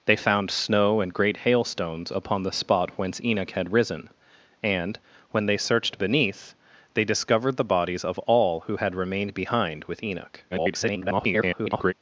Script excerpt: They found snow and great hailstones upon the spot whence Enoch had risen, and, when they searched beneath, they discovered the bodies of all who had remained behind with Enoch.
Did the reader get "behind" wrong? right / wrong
right